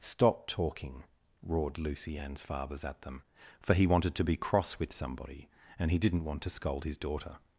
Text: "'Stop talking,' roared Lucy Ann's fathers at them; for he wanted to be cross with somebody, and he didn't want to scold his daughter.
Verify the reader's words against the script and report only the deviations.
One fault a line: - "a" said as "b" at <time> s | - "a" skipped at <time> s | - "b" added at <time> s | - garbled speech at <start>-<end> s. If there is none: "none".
none